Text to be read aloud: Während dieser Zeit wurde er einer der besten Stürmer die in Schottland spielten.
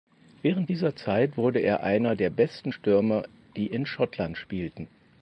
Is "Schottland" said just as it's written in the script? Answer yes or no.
yes